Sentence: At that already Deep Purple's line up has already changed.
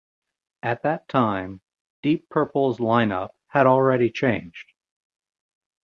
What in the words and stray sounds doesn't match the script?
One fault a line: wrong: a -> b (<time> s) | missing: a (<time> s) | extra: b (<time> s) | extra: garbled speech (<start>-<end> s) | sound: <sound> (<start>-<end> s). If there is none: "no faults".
wrong: already -> time (1.1 s)
wrong: has -> had (3.5 s)